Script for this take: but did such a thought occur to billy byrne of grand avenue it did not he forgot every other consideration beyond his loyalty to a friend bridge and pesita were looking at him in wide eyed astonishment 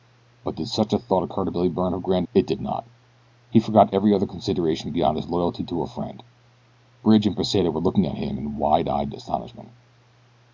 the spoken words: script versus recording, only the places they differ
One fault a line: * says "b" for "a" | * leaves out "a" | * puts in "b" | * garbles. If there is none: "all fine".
* leaves out "avenue"